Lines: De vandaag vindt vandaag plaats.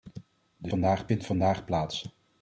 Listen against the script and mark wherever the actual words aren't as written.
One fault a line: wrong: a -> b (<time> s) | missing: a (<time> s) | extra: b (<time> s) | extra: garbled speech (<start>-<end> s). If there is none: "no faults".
no faults